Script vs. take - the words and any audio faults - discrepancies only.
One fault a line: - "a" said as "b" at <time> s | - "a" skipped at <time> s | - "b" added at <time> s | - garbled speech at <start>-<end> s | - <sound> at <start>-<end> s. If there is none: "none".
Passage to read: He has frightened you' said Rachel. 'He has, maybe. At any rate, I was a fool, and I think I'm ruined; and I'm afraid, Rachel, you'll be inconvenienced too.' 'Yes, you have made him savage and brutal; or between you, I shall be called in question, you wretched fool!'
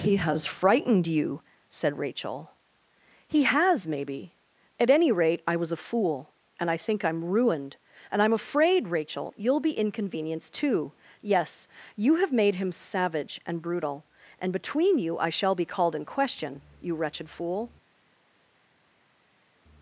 - "or" said as "and" at 14.4 s